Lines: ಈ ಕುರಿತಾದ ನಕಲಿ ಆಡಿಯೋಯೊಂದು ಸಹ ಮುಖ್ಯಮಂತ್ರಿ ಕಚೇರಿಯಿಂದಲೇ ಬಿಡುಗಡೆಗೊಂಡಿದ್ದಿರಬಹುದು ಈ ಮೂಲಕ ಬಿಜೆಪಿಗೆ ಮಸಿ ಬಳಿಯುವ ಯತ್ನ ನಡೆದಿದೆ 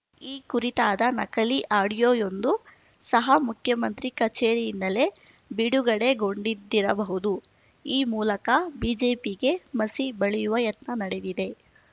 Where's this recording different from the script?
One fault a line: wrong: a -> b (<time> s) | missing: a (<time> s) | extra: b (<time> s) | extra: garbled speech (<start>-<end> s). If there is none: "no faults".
no faults